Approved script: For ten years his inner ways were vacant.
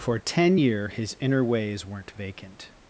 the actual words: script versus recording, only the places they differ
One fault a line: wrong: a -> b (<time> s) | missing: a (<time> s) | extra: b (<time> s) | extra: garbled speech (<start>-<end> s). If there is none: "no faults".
wrong: years -> year (0.5 s)
wrong: were -> weren't (1.9 s)